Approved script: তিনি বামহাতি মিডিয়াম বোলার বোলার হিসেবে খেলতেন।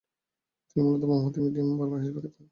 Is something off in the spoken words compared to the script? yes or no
yes